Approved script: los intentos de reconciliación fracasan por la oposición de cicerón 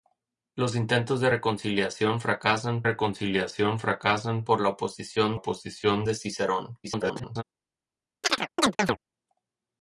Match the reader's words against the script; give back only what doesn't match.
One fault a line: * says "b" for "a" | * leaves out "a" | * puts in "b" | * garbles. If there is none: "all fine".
* puts in "reconciliación fracasan"
* puts in "oposición"
* garbles